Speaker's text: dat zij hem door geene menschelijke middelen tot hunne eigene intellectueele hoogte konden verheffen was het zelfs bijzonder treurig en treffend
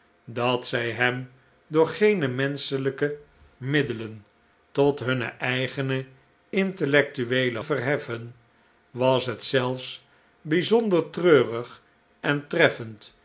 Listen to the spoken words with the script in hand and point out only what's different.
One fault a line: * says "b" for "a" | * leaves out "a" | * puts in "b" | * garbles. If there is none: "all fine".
* leaves out "hoogte konden"